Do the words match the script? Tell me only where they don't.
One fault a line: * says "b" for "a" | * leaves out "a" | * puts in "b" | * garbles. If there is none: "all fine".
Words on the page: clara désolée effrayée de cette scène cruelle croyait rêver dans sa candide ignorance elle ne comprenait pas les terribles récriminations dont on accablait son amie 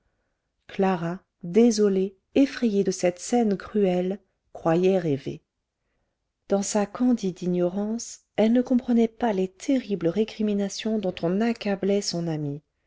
all fine